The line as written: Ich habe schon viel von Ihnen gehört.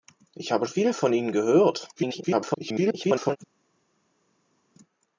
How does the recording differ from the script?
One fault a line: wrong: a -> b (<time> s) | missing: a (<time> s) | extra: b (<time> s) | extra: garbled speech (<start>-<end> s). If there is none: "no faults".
missing: schon (0.7 s)
extra: garbled speech (2.0-3.4 s)